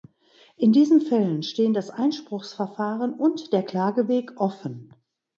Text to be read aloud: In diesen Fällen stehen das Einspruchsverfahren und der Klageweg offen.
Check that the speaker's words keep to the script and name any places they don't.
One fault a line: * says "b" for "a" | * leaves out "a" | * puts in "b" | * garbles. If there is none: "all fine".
all fine